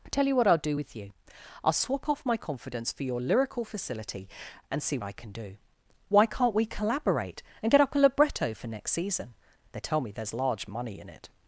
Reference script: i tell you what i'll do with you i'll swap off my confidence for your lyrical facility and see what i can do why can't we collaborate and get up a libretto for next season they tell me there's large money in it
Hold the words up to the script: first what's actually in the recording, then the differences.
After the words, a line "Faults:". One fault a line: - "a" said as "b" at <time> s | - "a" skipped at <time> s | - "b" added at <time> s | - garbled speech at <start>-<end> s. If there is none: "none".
i tell you what i'll do with you i'll swap off my confidence for your lyrical facility and see i can do why can't we collaborate and get up a libretto for next season they tell me there's large money in it
Faults:
- "what" skipped at 5.0 s